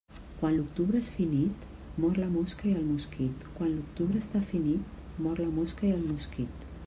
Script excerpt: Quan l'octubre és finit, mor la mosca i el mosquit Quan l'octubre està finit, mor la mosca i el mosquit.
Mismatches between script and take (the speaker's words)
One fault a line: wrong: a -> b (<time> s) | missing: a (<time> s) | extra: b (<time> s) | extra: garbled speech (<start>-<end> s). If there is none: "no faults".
no faults